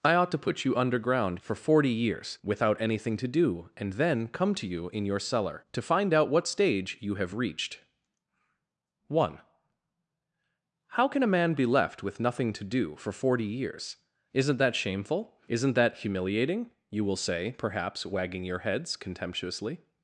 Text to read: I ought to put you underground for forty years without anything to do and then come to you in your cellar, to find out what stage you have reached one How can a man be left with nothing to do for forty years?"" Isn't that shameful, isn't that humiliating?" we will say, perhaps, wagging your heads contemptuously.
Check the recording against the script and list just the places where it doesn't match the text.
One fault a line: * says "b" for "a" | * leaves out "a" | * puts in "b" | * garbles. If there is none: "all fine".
* says "you" for "we"